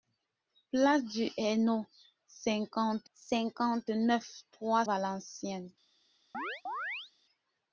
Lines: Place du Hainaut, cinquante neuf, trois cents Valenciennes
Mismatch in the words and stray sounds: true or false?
true